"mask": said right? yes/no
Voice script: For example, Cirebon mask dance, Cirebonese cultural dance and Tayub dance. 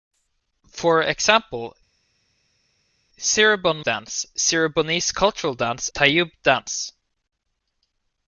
no